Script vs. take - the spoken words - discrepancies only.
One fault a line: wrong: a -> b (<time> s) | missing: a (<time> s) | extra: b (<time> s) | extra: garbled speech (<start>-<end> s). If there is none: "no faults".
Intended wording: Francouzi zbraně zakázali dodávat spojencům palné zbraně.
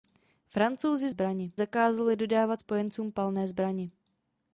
no faults